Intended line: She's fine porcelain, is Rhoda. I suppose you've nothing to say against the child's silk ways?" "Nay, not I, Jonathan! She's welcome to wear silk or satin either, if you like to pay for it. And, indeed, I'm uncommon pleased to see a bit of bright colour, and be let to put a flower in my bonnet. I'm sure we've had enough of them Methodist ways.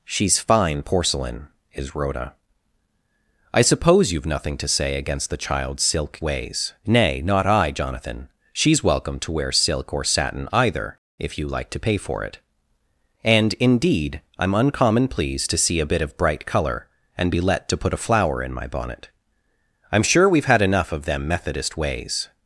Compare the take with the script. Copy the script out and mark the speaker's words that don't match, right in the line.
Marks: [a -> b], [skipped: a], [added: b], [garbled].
She's fine porcelain, is Rhoda. I suppose you've nothing to say against the child's silk ways?" "Nay, not I, Jonathan! She's welcome to wear silk or satin either, if you like to pay for it. And, indeed, I'm uncommon pleased to see a bit of bright colour, and be let to put a flower in my bonnet. I'm sure we've had enough of them Methodist ways.